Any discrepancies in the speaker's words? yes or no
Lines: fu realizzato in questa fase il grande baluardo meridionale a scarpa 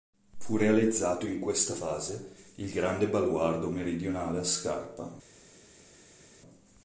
no